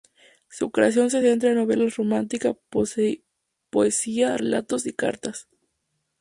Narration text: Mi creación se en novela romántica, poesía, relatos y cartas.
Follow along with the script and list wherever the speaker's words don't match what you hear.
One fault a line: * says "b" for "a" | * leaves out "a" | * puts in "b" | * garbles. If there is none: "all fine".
* says "Su" for "Mi"
* puts in "centra"